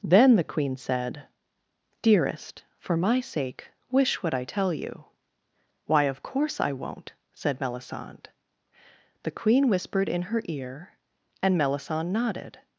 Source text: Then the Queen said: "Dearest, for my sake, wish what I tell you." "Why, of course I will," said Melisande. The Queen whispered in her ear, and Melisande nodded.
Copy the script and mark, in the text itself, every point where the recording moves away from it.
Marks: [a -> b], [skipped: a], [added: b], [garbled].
Then the Queen said: "Dearest, for my sake, wish what I tell you." "Why, of course I [will," -> won't] said Melisande. The Queen whispered in her ear, and Melisande nodded.